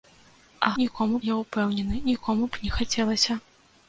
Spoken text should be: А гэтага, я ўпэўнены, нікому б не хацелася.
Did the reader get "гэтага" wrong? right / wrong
wrong